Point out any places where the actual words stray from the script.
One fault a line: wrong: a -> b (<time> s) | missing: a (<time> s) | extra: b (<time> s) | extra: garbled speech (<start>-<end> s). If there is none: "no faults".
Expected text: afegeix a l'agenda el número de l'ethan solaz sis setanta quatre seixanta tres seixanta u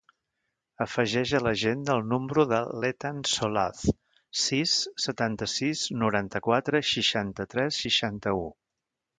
extra: sis noranta (5.6 s)